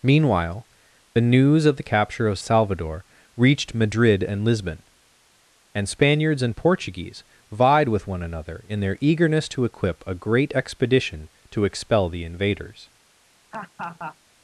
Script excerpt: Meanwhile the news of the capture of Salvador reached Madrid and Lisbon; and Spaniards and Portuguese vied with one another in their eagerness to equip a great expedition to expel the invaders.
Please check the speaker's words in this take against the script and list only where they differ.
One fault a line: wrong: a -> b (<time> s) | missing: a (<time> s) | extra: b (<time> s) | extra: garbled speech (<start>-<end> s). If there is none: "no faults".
no faults